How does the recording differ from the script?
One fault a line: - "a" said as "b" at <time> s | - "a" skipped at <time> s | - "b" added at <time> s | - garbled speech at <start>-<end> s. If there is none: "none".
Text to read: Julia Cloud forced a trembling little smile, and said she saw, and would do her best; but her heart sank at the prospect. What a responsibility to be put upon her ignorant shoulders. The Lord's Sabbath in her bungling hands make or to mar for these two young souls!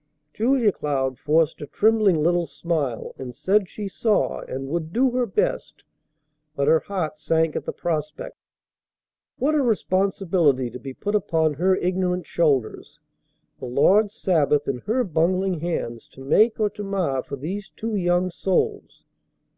- "to" added at 16.1 s